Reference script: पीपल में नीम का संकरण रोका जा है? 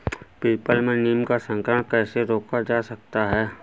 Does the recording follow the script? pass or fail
fail